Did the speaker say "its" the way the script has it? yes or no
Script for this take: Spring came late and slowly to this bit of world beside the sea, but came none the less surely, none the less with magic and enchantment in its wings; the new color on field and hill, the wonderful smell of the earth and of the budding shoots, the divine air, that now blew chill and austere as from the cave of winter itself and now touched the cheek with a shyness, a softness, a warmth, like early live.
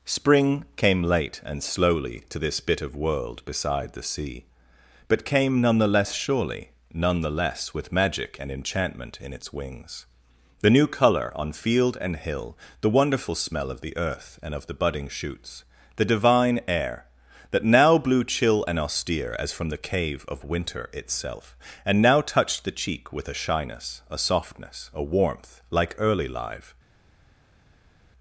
yes